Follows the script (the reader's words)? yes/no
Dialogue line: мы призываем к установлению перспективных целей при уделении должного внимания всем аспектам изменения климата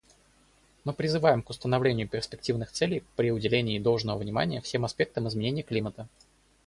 yes